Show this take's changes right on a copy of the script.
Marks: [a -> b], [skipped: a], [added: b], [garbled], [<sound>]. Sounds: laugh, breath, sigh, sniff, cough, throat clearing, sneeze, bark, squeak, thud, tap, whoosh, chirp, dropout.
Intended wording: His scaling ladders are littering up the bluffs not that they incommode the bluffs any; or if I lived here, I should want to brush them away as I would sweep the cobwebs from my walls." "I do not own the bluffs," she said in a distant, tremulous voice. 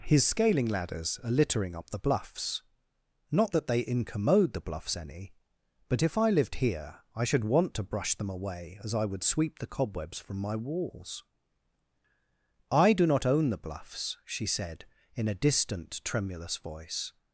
His scaling ladders are littering up the bluffs not that they incommode the bluffs any; [or -> but] if I lived here, I should want to brush them away as I would sweep the cobwebs from my walls." "I do not own the bluffs," she said in a distant, tremulous voice.